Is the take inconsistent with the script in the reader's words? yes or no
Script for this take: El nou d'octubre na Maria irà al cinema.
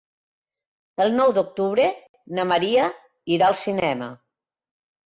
no